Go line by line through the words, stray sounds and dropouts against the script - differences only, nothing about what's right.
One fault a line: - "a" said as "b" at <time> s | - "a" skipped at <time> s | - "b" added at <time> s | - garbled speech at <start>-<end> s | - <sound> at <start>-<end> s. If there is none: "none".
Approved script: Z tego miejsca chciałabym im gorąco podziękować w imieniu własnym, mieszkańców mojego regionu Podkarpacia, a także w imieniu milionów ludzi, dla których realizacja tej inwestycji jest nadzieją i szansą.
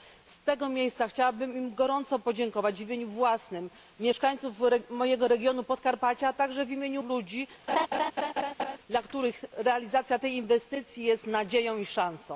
- "milionów" skipped at 7.0 s
- laugh at 7.7-8.8 s